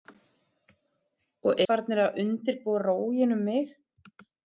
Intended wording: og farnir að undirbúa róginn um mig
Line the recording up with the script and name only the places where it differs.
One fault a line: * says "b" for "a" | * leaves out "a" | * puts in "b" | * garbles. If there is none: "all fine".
all fine